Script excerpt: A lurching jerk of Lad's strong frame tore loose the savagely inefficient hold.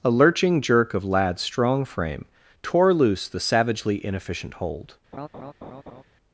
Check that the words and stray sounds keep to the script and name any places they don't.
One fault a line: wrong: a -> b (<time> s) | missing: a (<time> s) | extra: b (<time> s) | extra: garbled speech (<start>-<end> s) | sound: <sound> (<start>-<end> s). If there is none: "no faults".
sound: laugh (5.1-6.0 s)